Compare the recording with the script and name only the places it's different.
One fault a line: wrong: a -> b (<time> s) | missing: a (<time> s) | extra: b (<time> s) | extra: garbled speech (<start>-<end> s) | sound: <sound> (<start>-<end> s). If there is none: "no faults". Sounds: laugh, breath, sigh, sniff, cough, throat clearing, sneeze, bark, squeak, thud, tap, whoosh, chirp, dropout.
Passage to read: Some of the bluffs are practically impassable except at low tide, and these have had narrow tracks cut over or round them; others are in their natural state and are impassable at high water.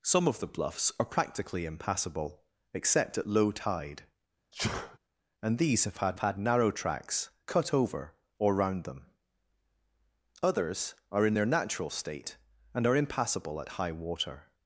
sound: sneeze (4.5-5.0 s)
extra: had (6.2 s)